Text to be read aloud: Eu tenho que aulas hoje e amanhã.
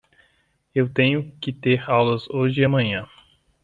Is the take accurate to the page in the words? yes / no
no